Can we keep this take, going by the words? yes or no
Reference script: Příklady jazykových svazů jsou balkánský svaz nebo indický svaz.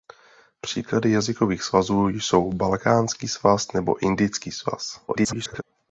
no